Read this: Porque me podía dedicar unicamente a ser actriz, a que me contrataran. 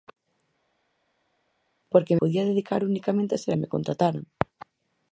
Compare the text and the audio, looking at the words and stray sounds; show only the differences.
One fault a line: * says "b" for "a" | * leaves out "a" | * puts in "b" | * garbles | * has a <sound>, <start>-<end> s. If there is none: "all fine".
* leaves out "me"
* leaves out "actriz a que"